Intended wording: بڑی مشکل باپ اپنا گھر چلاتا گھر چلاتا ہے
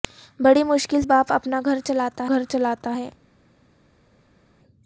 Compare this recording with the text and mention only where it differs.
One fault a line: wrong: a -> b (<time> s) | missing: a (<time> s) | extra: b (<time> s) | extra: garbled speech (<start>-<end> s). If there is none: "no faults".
no faults